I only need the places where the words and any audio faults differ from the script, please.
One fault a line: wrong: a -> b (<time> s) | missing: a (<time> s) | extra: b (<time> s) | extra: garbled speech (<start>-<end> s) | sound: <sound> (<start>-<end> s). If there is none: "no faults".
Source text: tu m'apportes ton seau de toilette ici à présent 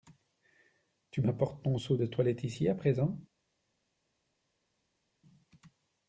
no faults